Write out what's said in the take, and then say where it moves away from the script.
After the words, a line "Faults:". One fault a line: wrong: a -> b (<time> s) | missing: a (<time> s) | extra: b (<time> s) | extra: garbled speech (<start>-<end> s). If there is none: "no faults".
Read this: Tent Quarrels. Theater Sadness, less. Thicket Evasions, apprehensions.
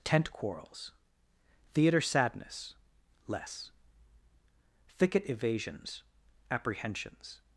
Tent Quarrels. Theater Sadness, less. Thicket Evasions, apprehensions.
Faults:
no faults